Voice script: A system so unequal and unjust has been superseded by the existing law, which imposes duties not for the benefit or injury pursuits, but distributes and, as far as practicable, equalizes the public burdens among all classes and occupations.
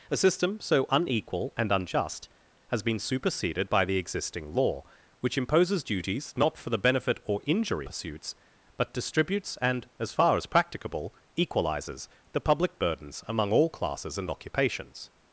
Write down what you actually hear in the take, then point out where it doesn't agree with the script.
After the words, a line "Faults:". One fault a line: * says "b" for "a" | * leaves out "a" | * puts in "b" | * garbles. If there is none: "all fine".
A system so unequal and unjust has been superseded by the existing law, which imposes duties not for the benefit or injury pursuits, but distributes and, as far as practicable, equalizes the public burdens among all classes and occupations.
Faults:
all fine